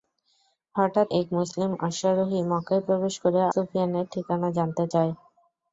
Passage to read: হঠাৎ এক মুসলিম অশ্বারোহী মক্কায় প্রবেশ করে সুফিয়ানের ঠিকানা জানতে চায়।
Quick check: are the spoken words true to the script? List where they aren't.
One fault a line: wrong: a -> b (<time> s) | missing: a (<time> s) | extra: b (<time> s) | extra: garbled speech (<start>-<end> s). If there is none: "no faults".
no faults